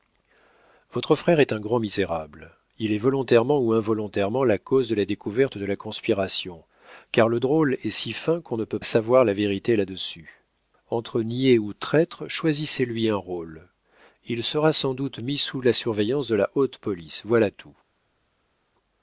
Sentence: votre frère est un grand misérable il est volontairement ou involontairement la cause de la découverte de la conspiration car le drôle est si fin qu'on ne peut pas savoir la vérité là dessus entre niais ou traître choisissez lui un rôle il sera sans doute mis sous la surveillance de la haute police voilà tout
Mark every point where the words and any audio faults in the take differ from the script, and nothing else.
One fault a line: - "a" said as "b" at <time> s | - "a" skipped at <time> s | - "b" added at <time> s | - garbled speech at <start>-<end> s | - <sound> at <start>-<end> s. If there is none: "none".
- "pas" skipped at 8.8 s